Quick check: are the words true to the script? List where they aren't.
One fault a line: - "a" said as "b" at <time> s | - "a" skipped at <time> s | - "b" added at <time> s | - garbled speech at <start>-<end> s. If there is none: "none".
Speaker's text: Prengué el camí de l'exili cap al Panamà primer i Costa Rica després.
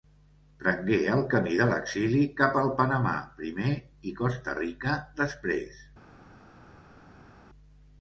none